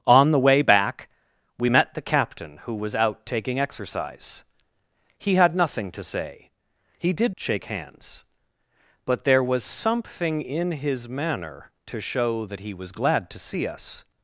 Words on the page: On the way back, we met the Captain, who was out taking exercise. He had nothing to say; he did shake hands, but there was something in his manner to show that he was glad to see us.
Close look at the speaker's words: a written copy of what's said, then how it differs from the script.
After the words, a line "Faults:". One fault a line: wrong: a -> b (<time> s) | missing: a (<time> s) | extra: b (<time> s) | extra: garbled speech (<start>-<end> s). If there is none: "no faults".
On the way back, we met the Captain, who was out taking exercise. He had nothing to say; he did shake hands, but there was something in his manner to show that he was glad to see us.
Faults:
no faults